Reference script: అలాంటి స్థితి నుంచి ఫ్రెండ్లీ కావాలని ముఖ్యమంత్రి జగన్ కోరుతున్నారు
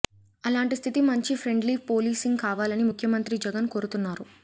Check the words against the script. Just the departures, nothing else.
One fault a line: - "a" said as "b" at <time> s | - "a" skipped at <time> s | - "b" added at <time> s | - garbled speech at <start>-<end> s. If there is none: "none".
- "పోలీసింగ్" added at 1.9 s